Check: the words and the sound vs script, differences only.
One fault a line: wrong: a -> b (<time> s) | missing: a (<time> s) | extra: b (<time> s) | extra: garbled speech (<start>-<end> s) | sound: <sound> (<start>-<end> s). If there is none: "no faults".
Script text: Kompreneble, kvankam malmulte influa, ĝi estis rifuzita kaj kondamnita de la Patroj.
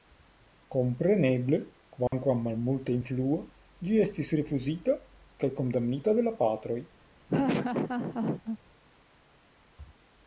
sound: dropout (2.1-2.1 s)
sound: laugh (7.3-8.6 s)